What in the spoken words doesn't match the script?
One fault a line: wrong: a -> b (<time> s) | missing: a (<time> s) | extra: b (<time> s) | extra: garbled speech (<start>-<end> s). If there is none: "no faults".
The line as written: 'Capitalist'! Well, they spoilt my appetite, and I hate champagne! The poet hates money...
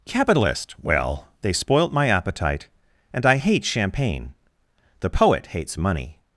no faults